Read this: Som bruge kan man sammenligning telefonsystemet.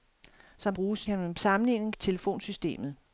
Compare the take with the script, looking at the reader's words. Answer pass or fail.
pass